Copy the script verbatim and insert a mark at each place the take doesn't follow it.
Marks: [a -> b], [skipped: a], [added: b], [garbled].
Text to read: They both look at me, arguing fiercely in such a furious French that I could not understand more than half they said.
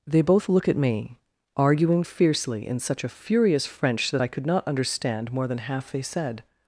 They both look at me, arguing fiercely in such a furious French that I could not understand more than half they said.